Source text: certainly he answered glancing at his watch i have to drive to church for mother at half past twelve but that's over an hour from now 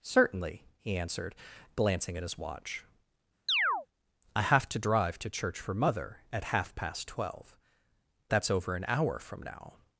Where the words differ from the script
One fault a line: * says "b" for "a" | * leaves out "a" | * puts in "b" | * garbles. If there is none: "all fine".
* leaves out "but"